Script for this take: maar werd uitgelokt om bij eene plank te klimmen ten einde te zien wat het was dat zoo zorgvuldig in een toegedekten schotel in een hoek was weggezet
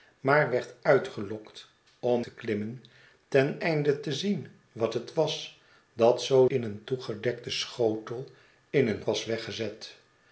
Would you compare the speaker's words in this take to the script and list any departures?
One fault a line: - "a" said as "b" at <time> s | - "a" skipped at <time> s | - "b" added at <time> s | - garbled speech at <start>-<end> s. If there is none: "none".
- "bij eene plank" skipped at 2.2 s
- "zorgvuldig" skipped at 6.5 s
- "hoek" skipped at 9.0 s